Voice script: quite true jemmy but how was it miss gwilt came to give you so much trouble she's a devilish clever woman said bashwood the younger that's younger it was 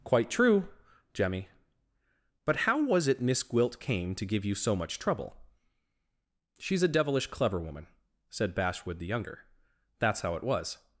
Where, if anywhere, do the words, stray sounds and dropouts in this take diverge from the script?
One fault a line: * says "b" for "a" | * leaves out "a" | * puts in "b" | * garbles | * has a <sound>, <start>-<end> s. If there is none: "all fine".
* says "how" for "younger"